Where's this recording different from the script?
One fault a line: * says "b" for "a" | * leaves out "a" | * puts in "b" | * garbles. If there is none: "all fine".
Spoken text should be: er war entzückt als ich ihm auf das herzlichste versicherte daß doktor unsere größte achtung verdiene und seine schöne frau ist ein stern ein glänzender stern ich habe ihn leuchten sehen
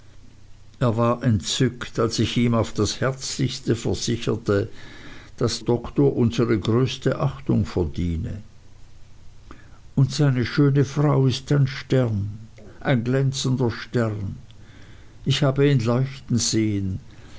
all fine